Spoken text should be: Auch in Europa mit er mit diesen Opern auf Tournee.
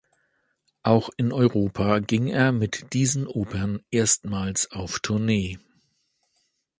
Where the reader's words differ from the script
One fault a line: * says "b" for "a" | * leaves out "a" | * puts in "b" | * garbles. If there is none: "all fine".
* says "ging" for "mit"
* puts in "erstmals"